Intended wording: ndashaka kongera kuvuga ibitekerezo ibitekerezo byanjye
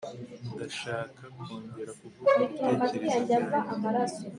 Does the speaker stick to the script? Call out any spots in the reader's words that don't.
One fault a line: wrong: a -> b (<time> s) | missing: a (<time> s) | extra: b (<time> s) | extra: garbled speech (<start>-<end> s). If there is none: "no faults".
missing: ibitekerezo (3.2 s)